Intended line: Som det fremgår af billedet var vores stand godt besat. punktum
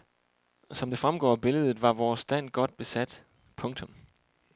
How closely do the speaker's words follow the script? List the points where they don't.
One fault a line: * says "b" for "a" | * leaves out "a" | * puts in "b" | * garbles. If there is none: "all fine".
all fine